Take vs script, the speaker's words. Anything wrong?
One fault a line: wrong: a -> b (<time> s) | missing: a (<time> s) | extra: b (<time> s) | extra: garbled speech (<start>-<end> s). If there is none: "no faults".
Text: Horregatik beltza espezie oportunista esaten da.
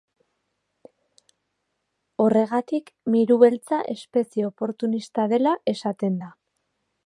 extra: miru (3.2 s)
extra: dela (5.4 s)